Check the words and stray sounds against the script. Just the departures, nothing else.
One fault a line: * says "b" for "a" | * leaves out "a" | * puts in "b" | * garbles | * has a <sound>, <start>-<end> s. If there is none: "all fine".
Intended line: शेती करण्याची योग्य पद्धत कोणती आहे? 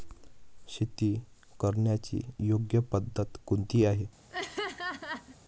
* has a laugh, 4.3-5.4 s